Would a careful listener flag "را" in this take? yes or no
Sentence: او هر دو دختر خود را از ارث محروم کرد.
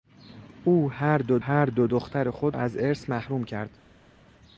yes